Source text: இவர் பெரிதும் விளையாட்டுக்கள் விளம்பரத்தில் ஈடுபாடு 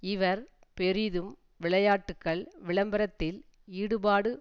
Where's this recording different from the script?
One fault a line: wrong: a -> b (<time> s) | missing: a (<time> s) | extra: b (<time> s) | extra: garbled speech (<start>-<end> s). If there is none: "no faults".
no faults